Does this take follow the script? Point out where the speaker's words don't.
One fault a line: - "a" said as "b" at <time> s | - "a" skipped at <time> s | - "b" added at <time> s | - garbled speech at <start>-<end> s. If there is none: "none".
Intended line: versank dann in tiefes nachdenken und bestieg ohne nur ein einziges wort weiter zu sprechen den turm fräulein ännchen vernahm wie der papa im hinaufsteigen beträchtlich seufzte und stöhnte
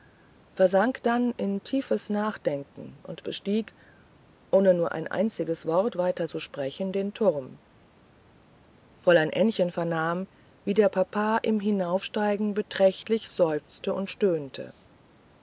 none